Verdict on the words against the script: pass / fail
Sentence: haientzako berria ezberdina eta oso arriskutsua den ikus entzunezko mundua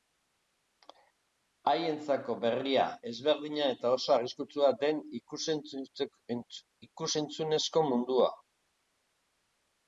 pass